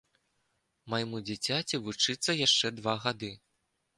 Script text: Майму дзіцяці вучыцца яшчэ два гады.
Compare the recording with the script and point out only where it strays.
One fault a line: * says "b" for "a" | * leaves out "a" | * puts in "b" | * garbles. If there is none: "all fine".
all fine